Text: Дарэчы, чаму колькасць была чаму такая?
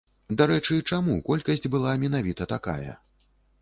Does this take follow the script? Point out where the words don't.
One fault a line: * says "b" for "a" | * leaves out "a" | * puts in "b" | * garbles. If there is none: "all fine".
* says "менавіта" for "чаму"